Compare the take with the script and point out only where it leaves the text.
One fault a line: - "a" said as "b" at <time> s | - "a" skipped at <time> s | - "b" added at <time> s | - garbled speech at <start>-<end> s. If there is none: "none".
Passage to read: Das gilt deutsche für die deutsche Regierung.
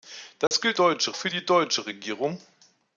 none